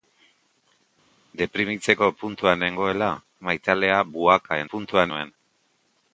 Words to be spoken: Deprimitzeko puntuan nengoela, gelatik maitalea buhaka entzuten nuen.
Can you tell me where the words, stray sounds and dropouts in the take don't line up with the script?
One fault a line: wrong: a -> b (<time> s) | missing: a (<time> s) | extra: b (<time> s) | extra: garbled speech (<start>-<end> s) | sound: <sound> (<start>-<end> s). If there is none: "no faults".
missing: gelatik (3.1 s)
wrong: entzuten -> puntuan (4.7 s)